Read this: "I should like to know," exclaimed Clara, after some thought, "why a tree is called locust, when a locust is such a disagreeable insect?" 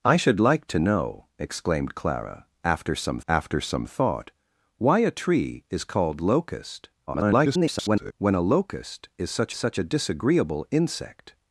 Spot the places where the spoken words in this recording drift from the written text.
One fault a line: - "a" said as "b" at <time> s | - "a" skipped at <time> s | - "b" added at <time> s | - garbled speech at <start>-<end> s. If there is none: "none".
- "after some" added at 3.3 s
- garbled speech at 7.1-8.1 s
- "such" added at 9.5 s